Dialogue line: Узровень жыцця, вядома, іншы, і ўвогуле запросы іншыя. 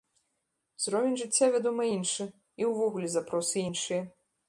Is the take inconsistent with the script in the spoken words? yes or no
no